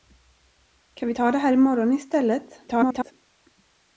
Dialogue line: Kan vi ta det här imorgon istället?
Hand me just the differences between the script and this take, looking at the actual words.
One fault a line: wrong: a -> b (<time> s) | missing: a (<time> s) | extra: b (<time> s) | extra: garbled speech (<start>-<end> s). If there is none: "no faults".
extra: garbled speech (2.7-3.1 s)